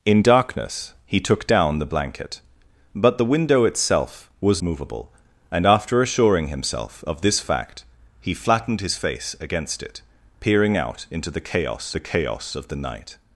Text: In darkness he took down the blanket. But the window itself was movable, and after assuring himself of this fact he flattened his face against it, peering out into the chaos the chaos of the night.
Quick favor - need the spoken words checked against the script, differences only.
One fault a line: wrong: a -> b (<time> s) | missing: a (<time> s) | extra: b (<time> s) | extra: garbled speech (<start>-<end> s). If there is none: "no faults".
no faults